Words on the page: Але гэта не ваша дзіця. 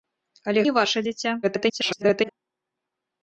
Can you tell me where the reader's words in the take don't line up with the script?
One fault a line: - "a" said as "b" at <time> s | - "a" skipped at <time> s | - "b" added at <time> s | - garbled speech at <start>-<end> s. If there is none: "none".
- "гэта" skipped at 0.6 s
- garbled speech at 1.4-2.3 s